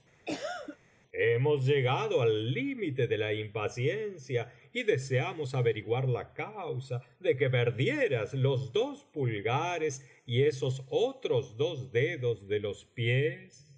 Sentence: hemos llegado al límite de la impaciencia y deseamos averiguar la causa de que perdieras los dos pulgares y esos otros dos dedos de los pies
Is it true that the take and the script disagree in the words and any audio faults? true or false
true